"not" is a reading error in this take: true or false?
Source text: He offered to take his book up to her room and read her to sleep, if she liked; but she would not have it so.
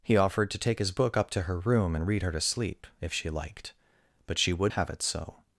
true